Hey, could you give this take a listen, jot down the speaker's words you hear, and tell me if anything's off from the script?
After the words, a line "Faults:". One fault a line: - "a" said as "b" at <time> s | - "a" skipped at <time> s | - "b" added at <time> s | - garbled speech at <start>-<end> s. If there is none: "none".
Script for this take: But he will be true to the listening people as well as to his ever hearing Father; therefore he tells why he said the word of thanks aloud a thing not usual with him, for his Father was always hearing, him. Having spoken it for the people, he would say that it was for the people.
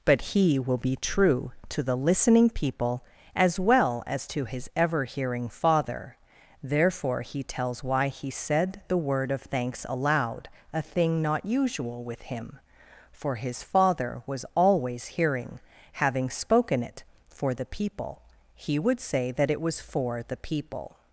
But he will be true to the listening people as well as to his ever hearing Father; therefore he tells why he said the word of thanks aloud a thing not usual with him, for his Father was always hearing. Having spoken it for the people, he would say that it was for the people.
Faults:
- "him" skipped at 15.6 s